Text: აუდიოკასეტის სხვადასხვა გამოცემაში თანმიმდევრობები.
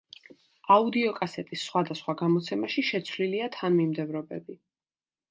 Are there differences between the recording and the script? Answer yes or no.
yes